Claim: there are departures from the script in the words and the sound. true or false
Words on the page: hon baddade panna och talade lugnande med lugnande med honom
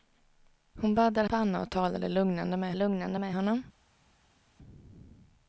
false